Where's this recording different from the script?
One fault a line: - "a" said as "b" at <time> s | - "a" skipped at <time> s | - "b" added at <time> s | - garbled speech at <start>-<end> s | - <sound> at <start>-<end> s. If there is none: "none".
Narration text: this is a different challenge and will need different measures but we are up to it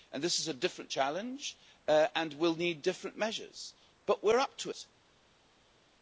none